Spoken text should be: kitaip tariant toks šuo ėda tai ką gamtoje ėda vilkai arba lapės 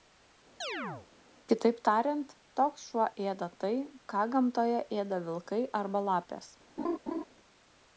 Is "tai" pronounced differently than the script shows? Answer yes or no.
no